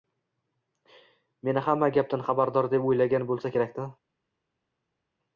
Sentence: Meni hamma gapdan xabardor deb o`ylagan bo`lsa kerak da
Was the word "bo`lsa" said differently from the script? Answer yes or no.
no